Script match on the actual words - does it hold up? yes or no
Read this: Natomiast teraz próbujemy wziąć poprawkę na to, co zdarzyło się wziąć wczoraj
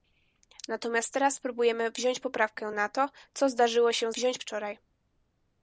yes